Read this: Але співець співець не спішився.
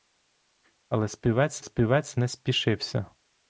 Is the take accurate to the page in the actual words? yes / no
yes